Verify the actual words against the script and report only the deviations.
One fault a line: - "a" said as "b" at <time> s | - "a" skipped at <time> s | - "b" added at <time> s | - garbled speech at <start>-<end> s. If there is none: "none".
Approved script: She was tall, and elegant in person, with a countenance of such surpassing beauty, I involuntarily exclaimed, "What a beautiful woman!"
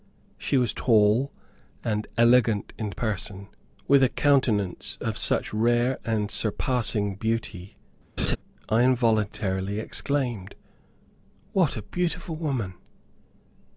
- "rare and" added at 5.5 s